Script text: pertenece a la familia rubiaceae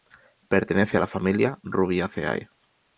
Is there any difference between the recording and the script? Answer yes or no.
no